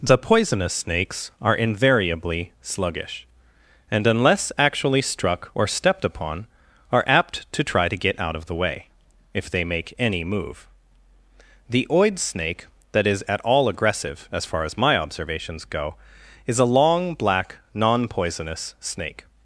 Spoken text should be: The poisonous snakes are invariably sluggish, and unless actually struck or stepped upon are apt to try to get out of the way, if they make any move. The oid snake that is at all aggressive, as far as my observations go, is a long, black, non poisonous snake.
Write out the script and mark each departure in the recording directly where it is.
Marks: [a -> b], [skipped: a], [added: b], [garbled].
The poisonous snakes are invariably sluggish, and unless actually struck or stepped upon are apt to try to get out of the way, if they make any move. The oid snake that is at all aggressive, as far as my observations go, is a long, black, non poisonous snake.